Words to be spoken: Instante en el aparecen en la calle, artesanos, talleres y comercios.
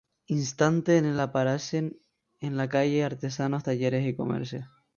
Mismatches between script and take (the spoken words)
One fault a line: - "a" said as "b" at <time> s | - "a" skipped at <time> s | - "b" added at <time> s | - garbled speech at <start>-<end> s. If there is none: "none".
none